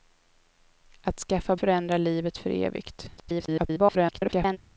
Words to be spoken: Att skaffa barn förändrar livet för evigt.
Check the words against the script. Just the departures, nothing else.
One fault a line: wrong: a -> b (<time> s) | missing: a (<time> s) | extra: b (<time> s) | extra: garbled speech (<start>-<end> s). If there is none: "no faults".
missing: barn (1.6 s)
extra: garbled speech (3.2-4.6 s)